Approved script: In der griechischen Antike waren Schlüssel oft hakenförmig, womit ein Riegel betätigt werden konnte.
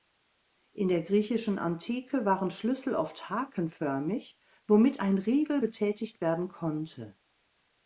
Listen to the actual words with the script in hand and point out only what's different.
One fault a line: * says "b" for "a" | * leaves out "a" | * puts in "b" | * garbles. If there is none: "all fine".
all fine